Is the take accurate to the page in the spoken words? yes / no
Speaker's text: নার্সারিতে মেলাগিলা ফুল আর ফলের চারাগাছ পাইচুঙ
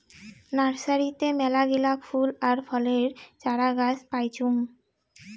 yes